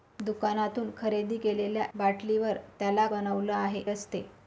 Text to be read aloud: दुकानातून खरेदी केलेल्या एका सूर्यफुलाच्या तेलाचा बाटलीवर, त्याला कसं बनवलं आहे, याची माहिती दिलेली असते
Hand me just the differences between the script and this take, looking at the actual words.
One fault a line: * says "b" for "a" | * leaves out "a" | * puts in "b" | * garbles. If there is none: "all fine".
* leaves out "एका सूर्यफुलाच्या तेलाचा"
* leaves out "कसं"
* leaves out "याची माहिती दिलेली"